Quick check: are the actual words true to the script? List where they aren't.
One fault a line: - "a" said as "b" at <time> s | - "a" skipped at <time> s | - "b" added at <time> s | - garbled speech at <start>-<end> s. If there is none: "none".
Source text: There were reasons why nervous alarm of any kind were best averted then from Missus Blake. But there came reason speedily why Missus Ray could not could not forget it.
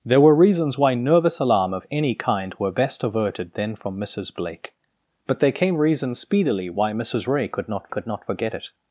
none